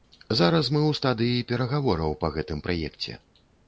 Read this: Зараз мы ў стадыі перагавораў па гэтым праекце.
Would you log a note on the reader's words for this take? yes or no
no